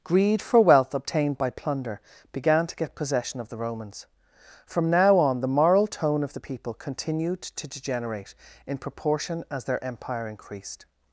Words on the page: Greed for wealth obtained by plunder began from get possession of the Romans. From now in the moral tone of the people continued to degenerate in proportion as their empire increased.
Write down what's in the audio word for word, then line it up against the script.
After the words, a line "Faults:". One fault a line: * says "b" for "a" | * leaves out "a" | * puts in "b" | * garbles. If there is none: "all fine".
Greed for wealth obtained by plunder began to get possession of the Romans. From now on the moral tone of the people continued to degenerate in proportion as their empire increased.
Faults:
* says "to" for "from"
* says "on" for "in"